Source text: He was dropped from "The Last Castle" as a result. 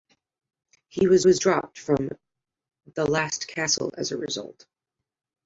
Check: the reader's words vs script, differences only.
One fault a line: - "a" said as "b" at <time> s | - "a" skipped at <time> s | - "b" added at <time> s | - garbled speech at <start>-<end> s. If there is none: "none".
- "was" added at 1.2 s